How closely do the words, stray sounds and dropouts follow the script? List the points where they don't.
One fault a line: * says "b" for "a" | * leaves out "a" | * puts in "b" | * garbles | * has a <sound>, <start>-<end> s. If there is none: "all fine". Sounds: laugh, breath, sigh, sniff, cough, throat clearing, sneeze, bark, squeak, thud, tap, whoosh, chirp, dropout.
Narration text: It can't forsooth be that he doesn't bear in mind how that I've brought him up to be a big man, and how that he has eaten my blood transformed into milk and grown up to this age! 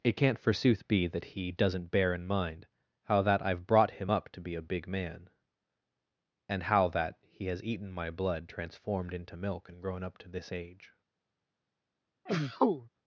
* has a sneeze, 12.3-12.9 s